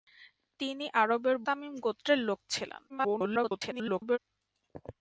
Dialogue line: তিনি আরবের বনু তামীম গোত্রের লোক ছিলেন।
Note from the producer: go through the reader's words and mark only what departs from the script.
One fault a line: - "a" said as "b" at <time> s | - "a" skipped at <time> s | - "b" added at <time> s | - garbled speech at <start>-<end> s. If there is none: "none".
- "বনু" skipped at 1.4 s
- garbled speech at 2.9-4.2 s